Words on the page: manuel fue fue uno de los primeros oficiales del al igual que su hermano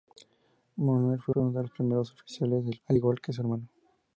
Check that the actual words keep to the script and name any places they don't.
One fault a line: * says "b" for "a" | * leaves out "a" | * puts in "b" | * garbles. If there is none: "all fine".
all fine